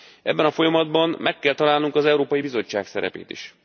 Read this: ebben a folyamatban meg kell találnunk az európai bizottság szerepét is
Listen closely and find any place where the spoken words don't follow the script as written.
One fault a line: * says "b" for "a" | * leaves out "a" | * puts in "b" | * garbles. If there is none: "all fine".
all fine